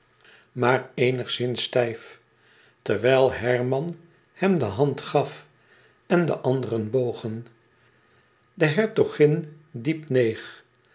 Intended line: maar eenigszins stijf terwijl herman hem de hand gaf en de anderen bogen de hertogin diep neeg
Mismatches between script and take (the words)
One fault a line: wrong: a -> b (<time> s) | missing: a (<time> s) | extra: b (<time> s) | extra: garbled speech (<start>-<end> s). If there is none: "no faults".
no faults